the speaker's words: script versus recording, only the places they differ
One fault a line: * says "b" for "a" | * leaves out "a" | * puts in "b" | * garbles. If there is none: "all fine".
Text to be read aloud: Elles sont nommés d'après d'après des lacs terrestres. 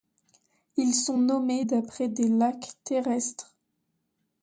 * says "Ils" for "Elles"
* leaves out "d'après"